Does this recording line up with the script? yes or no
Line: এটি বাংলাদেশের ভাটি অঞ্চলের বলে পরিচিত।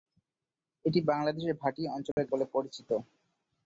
yes